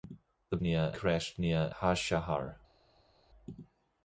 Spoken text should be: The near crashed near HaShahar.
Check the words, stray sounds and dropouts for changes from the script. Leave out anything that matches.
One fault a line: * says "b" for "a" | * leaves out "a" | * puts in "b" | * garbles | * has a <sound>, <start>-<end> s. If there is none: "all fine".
all fine